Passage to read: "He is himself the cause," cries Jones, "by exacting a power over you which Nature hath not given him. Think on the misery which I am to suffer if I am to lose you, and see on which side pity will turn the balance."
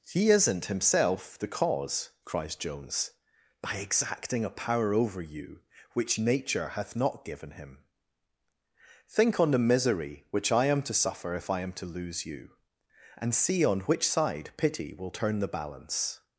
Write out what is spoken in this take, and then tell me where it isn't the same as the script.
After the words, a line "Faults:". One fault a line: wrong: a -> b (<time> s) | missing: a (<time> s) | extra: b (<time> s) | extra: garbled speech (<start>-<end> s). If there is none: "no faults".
"He isn't himself the cause," cries Jones, "by exacting a power over you which Nature hath not given him. Think on the misery which I am to suffer if I am to lose you, and see on which side pity will turn the balance."
Faults:
wrong: is -> isn't (0.3 s)